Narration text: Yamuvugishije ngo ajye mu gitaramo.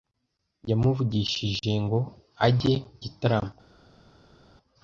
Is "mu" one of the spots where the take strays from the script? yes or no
yes